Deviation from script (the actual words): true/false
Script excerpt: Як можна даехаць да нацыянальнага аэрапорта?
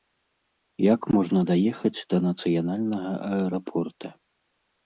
false